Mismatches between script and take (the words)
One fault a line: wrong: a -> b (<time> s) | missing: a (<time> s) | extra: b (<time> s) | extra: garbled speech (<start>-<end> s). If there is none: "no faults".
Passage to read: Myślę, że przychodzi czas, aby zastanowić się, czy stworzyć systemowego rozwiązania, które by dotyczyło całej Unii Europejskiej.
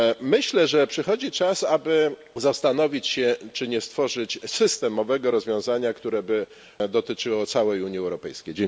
extra: nie (3.7 s)